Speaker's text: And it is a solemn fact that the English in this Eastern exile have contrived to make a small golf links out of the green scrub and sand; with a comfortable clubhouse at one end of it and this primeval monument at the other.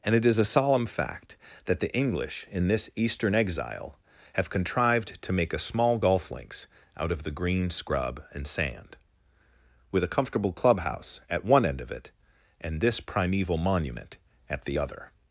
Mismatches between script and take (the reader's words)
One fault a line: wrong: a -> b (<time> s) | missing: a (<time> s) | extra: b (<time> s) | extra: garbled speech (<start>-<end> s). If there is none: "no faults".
no faults